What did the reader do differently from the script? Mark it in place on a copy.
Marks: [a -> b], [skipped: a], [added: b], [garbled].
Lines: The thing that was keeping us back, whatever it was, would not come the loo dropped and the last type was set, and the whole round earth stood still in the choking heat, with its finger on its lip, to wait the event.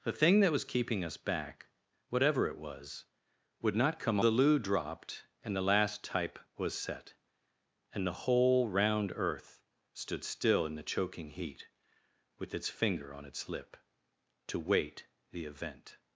The thing that was keeping us back, whatever it was, would not come the loo dropped and the last type was set, and the whole round earth stood still in the choking heat, with its finger on its lip, to wait the event.